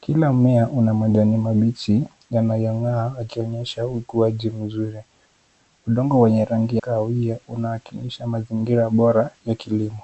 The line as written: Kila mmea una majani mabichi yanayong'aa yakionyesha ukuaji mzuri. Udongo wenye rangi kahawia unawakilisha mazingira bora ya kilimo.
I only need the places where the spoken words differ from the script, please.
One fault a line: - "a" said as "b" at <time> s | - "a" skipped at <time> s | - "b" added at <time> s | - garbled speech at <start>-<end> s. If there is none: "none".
none